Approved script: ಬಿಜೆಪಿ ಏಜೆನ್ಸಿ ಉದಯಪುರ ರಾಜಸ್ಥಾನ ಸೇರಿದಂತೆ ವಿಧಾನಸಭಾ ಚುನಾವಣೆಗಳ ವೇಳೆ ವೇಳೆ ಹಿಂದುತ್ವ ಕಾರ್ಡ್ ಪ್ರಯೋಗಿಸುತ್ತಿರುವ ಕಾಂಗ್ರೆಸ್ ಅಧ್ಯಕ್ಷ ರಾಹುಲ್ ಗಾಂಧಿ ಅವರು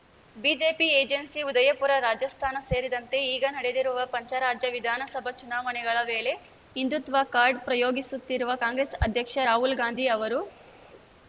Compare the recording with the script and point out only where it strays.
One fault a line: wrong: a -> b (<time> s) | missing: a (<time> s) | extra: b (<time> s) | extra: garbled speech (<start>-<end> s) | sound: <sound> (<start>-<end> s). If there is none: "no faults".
extra: ಈಗ ನಡೆದಿರುವ ಪಂಚರಾಜ್ಯ (3.3 s)
missing: ವೇಳೆ (6.3 s)